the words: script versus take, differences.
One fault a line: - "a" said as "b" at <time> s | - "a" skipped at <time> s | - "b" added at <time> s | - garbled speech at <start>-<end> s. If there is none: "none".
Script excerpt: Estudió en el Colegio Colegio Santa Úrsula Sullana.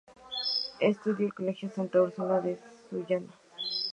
- "Colegio" skipped at 1.7 s
- "de" added at 2.4 s